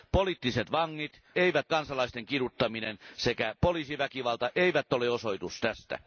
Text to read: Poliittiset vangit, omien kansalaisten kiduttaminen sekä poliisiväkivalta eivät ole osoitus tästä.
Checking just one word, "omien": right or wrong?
wrong